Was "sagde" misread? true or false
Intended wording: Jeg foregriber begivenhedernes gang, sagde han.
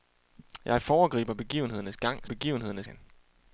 true